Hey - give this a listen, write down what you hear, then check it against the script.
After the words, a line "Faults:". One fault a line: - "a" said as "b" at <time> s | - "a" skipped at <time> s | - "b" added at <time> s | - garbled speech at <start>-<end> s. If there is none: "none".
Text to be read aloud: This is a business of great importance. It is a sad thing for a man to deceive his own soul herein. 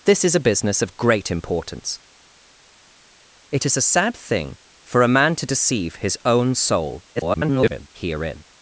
This is a business of great importance. It is a sad thing for a man to deceive his own soul [garbled] herein.
Faults:
- garbled speech at 7.2-7.9 s